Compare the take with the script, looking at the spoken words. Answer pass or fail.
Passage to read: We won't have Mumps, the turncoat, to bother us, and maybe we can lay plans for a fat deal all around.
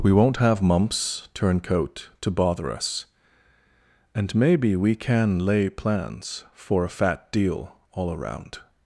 fail